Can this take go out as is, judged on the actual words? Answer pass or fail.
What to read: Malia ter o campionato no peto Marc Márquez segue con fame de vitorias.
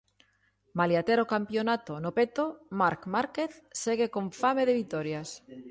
pass